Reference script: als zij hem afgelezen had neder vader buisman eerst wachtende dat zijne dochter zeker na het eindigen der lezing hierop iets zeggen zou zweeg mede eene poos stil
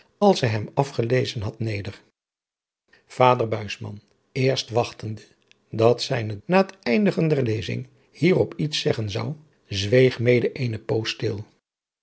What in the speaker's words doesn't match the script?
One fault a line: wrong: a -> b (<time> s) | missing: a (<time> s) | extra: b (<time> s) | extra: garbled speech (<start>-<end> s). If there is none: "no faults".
missing: dochter zeker (6.4 s)